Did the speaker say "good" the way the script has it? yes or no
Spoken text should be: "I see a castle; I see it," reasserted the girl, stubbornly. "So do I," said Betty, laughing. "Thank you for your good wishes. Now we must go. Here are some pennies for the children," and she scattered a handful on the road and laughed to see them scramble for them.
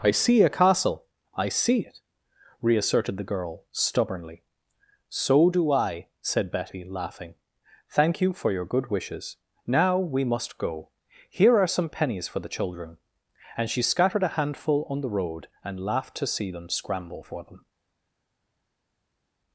yes